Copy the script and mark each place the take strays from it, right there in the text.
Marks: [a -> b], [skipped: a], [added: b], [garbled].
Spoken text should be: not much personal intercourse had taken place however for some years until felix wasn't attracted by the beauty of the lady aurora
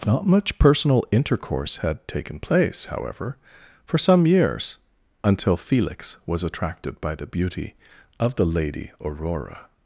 not much personal intercourse had taken place however for some years until felix [wasn't -> was] attracted by the beauty of the lady aurora